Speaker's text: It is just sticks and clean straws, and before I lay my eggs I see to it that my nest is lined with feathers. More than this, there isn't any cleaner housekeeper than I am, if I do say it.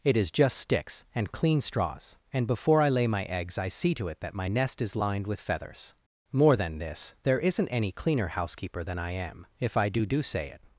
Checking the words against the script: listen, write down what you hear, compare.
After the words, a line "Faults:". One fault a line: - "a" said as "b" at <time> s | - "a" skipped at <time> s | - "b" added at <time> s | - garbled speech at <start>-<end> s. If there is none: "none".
It is just sticks and clean straws, and before I lay my eggs I see to it that my nest is lined with feathers. More than this, there isn't any cleaner housekeeper than I am, if I do do say it.
Faults:
- "do" added at 10.1 s